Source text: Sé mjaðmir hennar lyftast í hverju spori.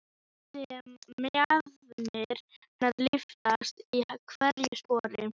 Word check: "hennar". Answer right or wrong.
right